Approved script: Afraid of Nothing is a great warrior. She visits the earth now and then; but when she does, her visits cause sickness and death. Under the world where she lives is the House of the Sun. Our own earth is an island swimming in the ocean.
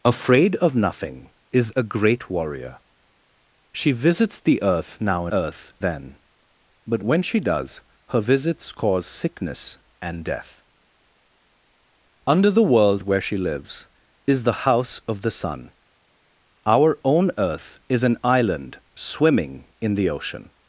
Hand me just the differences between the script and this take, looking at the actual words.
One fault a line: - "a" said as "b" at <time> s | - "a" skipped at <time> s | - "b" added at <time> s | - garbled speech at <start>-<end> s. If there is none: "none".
- "and" said as "earth" at 5.3 s